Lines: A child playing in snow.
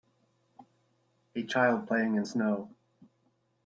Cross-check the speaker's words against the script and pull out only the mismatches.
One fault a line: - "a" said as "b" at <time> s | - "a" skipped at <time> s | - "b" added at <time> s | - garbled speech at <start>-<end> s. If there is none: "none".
none